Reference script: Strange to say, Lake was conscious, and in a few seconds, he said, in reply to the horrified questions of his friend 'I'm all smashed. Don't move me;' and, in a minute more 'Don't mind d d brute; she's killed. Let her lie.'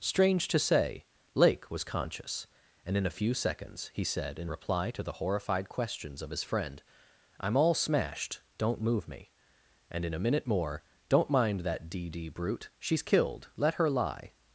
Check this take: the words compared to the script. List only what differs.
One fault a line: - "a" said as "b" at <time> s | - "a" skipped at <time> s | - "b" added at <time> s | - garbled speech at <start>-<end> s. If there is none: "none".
- "that" added at 11.6 s